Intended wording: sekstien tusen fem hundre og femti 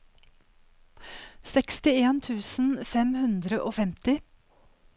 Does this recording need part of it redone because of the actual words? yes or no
no